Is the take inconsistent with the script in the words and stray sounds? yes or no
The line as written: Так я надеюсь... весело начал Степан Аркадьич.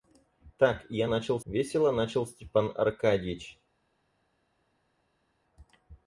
yes